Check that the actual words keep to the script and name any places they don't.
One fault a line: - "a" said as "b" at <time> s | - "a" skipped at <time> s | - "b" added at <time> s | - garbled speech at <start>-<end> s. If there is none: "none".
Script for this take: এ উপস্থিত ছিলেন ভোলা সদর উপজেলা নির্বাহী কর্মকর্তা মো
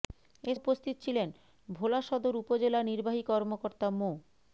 none